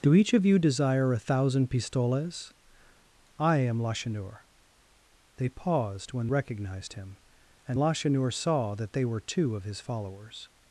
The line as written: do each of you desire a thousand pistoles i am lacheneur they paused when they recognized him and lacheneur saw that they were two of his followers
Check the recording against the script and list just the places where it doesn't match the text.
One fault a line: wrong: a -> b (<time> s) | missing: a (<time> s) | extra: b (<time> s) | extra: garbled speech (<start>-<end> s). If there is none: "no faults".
missing: they (6.3 s)